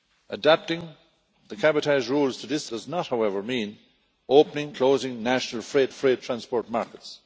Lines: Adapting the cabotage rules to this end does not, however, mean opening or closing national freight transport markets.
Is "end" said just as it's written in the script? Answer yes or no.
no